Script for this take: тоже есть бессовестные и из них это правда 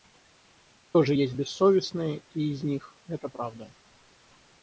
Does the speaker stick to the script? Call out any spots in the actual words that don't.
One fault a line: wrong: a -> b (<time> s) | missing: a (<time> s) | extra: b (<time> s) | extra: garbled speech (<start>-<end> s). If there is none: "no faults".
no faults